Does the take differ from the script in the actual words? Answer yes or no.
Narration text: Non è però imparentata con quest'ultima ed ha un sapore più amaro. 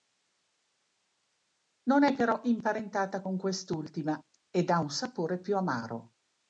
no